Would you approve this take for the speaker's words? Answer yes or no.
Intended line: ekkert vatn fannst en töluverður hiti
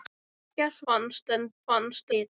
no